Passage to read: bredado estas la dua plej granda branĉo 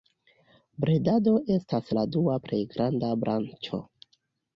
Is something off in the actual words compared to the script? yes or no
no